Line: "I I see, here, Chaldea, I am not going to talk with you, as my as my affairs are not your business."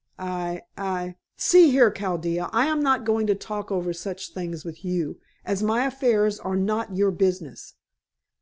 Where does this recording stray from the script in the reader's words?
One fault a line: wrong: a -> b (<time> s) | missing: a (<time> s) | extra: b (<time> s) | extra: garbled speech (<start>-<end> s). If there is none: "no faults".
extra: over such things (3.7 s)
missing: as my (5.8 s)